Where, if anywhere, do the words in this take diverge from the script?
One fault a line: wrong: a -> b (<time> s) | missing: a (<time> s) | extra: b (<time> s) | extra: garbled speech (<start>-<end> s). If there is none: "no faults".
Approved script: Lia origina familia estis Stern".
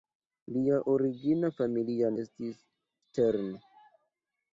no faults